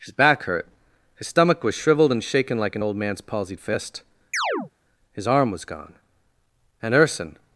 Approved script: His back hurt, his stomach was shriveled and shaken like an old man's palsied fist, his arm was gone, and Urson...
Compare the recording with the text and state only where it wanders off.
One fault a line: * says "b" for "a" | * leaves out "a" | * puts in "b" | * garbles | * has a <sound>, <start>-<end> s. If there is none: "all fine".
* has a chirp, 4.3-4.7 s